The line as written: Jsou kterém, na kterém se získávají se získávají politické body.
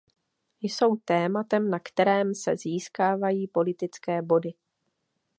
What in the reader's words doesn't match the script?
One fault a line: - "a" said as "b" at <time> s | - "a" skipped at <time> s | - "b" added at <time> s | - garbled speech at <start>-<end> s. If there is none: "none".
- "kterém" said as "tématem" at 0.9 s
- "se získávají" skipped at 3.5 s